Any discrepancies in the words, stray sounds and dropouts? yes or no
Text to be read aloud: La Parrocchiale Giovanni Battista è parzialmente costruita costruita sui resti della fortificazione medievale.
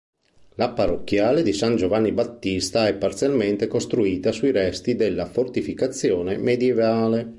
yes